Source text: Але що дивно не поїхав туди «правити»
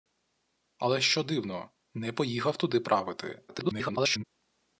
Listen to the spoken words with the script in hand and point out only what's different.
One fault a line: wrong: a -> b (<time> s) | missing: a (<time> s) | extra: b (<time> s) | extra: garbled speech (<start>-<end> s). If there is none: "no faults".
extra: garbled speech (3.5-4.2 s)